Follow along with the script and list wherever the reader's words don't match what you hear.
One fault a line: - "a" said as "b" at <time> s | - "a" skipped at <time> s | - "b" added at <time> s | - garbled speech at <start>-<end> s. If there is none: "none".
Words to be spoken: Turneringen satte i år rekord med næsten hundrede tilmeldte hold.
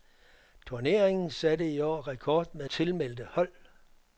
- "næsten hundrede" skipped at 2.7 s